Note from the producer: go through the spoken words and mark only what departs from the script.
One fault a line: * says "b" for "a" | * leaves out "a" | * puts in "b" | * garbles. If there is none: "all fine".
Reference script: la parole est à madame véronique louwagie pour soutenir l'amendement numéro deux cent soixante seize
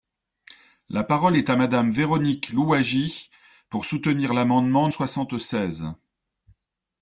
* leaves out "numéro deux cent"